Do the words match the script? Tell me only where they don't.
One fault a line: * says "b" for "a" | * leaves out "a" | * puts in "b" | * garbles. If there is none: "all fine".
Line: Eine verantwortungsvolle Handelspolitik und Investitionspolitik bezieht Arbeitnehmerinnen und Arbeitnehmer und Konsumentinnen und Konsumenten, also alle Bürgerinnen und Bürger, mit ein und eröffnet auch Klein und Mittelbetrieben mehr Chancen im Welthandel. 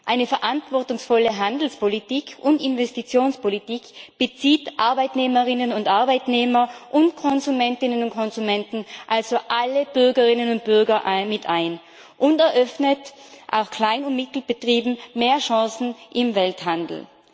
all fine